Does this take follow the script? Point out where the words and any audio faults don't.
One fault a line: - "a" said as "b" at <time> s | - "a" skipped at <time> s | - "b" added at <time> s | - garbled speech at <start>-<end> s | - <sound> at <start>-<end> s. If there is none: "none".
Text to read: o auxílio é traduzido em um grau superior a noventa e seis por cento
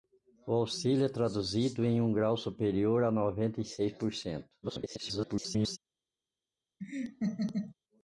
- garbled speech at 4.6-5.8 s
- laugh at 6.8-7.7 s